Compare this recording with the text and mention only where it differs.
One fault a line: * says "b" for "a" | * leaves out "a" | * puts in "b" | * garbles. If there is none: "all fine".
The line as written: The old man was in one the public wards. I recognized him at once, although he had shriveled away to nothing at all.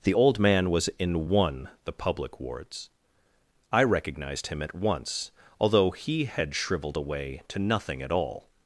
all fine